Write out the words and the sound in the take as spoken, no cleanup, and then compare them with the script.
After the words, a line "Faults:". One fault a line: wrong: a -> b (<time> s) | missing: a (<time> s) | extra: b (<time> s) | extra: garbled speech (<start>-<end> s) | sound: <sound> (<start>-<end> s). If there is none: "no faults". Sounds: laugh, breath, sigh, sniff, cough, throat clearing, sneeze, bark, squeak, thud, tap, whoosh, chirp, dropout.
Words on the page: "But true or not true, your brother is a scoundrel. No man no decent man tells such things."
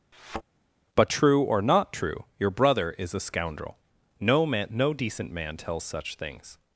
"But true or not true, your brother is a scoundrel. No man no decent man tells such things."
Faults:
sound: thud (0.1-0.4 s)